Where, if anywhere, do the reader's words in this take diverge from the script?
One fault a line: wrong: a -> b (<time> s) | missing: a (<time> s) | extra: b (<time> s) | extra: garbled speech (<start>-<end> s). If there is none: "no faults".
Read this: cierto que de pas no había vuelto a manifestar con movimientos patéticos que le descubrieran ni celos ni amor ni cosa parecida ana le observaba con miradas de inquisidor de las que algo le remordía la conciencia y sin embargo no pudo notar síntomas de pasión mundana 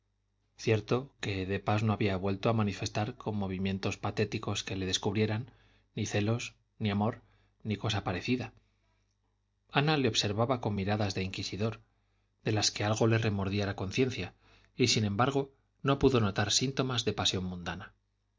no faults